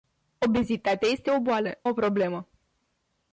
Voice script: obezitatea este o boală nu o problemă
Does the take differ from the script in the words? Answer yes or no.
yes